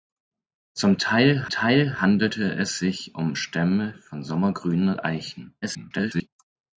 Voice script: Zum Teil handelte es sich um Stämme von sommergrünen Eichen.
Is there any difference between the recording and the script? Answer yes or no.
yes